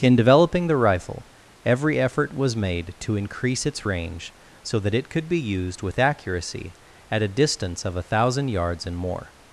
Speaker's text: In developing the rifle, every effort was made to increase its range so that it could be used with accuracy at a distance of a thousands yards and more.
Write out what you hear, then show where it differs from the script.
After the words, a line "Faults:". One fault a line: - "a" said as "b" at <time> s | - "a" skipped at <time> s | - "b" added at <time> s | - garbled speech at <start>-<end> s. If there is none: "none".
In developing the rifle, every effort was made to increase its range so that it could be used with accuracy at a distance of a thousand yards and more.
Faults:
- "thousands" said as "thousand" at 8.0 s